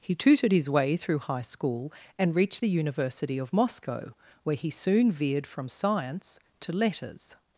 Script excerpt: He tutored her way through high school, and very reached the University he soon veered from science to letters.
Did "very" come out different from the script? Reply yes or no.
yes